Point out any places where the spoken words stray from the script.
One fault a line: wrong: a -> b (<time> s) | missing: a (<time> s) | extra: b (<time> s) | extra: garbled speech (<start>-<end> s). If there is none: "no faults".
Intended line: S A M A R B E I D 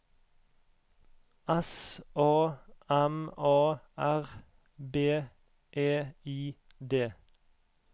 no faults